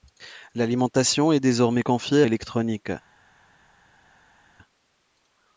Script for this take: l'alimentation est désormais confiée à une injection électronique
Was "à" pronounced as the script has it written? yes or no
no